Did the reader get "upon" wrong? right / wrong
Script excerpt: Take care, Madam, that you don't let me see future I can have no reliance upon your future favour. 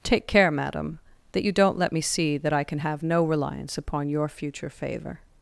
right